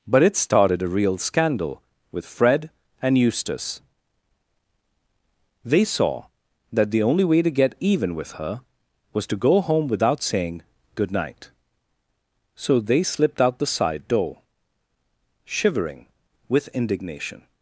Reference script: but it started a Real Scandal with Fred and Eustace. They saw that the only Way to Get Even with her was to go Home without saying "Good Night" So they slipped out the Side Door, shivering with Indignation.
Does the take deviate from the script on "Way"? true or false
false